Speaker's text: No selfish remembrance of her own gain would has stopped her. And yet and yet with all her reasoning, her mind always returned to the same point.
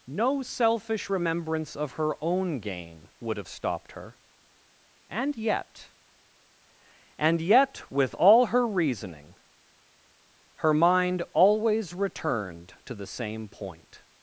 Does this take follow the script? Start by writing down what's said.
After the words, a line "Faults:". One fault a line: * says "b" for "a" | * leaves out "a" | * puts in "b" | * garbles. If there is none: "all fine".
No selfish remembrance of her own gain would have stopped her. And yet and yet with all her reasoning, her mind always returned to the same point.
Faults:
* says "have" for "has"